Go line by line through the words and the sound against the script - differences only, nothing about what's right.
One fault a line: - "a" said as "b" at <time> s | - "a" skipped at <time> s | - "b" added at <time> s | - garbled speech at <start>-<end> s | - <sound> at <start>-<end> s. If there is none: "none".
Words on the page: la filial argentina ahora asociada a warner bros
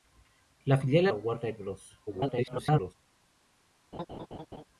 - "argentina ahora asociada" skipped at 1.1 s
- garbled speech at 2.1-2.9 s
- laugh at 3.9-4.6 s